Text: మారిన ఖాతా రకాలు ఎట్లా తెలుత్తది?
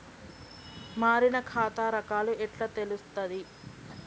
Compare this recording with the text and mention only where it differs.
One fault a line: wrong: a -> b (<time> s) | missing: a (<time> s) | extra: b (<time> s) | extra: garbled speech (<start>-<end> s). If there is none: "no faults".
no faults